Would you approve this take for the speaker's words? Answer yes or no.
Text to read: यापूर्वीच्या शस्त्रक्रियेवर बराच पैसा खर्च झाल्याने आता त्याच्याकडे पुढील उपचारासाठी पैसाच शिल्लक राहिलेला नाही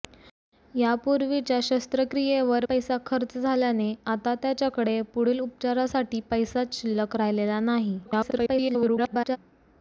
no